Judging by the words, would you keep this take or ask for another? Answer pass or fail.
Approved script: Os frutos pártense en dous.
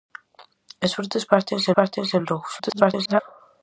fail